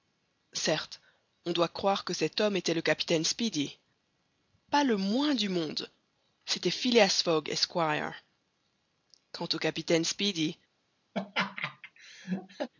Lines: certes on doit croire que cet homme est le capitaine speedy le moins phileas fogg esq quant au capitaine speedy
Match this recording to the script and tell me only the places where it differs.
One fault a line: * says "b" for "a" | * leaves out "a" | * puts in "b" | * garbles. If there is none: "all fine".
* says "était" for "est"
* puts in "pas"
* puts in "du monde c'était"